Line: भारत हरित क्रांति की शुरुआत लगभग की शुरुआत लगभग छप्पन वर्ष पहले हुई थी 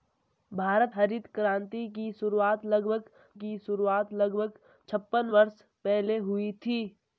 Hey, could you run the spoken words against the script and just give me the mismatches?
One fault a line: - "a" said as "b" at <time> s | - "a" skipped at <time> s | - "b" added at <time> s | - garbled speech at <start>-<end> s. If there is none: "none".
none